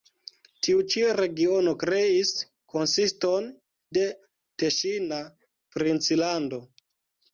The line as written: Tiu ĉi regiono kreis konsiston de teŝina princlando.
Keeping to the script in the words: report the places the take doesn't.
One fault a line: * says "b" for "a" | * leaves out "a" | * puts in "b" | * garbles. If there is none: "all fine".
all fine